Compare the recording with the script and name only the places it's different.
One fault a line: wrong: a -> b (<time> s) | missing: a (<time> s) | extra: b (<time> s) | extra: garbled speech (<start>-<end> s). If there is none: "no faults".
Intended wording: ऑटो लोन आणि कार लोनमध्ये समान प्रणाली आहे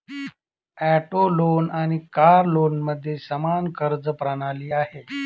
extra: कर्ज (3.7 s)